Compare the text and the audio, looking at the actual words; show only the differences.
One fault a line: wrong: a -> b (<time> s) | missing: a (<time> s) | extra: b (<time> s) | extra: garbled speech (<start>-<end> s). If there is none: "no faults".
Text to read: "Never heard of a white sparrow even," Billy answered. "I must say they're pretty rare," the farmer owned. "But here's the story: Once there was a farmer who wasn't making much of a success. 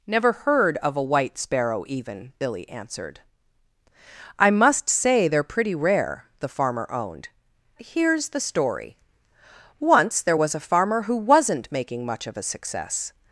missing: But (7.3 s)